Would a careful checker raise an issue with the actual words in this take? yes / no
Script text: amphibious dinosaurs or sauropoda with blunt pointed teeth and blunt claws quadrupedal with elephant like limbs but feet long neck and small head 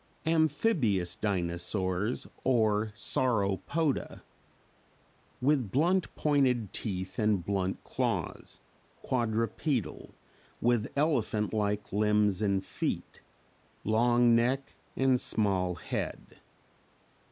yes